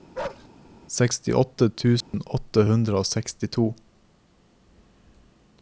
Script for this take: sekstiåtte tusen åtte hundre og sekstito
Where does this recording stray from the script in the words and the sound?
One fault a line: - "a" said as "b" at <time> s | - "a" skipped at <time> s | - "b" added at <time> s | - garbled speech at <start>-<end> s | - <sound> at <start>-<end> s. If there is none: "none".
- bark at 0.1-0.5 s
- dropout at 2.0-2.1 s